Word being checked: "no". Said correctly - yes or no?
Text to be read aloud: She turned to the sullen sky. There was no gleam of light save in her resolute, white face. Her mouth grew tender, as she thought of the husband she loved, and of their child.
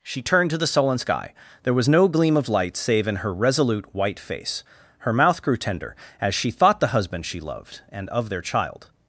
yes